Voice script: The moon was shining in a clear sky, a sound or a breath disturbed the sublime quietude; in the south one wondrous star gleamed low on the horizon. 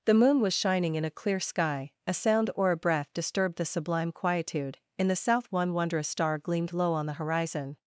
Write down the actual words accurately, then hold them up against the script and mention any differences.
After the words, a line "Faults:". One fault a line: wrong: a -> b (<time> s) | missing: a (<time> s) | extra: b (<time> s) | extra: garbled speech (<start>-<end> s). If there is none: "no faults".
The moon was shining in a clear sky, a sound or a breath disturbed the sublime quietude; in the south one wondrous star gleamed low on the horizon.
Faults:
no faults